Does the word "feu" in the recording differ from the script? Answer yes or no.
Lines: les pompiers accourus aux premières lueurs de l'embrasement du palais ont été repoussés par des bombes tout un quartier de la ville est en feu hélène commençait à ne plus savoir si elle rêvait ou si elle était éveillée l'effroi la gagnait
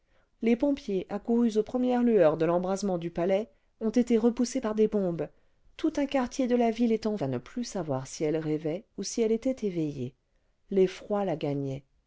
yes